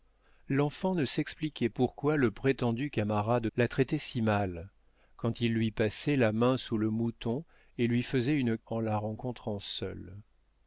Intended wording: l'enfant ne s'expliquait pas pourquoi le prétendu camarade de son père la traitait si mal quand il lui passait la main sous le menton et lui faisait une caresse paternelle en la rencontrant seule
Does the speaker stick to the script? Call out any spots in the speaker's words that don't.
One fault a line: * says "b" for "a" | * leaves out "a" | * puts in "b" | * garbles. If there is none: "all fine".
* leaves out "pas"
* leaves out "de son père"
* leaves out "caresse paternelle"